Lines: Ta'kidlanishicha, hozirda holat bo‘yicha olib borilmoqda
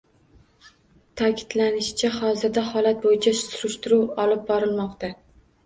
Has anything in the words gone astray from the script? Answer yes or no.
yes